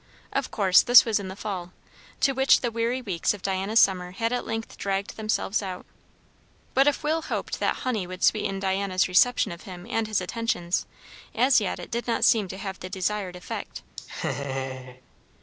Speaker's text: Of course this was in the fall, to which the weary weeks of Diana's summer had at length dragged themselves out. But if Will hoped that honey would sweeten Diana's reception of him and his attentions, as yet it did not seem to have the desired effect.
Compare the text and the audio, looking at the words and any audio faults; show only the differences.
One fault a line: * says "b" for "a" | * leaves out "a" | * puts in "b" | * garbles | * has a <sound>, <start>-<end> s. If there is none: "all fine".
* has a laugh, 14.0-15.0 s